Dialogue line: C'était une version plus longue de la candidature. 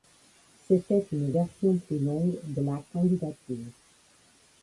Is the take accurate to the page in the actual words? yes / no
yes